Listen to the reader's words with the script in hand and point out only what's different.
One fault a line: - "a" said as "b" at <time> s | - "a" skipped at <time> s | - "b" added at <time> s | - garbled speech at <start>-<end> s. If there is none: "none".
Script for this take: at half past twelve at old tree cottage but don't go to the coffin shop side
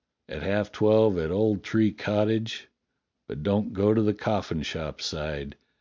- "past" skipped at 0.7 s